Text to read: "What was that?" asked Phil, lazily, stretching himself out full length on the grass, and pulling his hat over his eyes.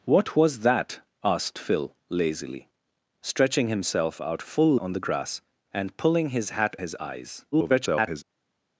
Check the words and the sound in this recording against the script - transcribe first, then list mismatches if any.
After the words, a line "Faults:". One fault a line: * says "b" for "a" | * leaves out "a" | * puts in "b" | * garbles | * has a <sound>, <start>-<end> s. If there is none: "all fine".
"What was that?" asked Phil, lazily, stretching himself out full on the grass, and pulling his hat his eyes. [garbled]
Faults:
* leaves out "length"
* leaves out "over"
* garbles